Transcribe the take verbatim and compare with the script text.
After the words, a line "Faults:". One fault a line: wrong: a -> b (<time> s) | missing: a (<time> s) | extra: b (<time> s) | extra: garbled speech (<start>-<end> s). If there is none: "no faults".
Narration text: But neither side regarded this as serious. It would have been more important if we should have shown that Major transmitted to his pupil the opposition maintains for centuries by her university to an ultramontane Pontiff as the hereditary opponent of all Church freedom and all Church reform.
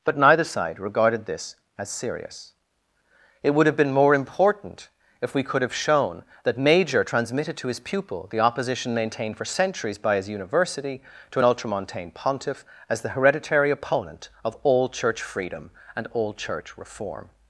But neither side regarded this as serious. It would have been more important if we could have shown that Major transmitted to his pupil the opposition maintained for centuries by his university to an ultramontane Pontiff as the hereditary opponent of all Church freedom and all Church reform.
Faults:
wrong: should -> could (5.4 s)
wrong: maintains -> maintained (8.9 s)
wrong: her -> his (10.1 s)